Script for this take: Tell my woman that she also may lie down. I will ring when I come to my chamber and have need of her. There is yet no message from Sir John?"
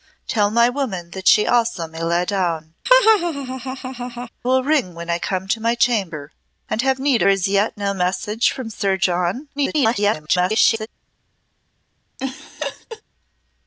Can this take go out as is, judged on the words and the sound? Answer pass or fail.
fail